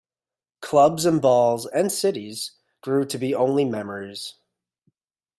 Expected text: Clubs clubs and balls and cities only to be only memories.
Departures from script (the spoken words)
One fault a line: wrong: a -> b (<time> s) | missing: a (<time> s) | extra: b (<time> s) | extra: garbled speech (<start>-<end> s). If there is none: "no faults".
missing: clubs (1.1 s)
wrong: only -> grew (2.8 s)